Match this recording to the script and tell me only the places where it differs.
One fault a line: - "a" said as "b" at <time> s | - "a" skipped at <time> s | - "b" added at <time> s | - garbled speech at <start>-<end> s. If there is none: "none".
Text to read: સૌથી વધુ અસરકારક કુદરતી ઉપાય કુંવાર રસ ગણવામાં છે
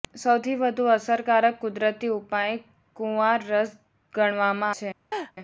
none